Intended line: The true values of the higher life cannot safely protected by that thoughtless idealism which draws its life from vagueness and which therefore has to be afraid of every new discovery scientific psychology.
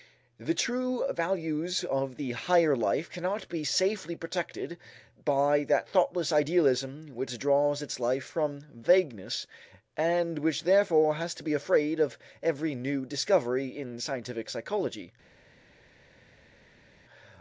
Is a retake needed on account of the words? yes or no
yes